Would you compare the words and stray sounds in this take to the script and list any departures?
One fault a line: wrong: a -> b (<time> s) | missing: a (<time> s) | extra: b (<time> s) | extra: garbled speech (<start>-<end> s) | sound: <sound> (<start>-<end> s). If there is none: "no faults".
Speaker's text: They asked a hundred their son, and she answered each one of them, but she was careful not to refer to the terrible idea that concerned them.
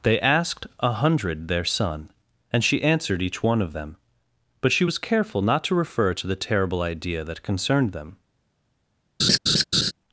sound: laugh (9.2-9.9 s)